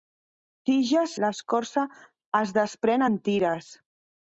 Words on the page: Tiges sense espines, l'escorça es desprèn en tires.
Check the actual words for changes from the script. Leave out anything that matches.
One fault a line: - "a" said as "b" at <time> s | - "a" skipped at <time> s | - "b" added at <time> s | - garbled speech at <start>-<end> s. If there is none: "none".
- "sense espines" skipped at 1.1 s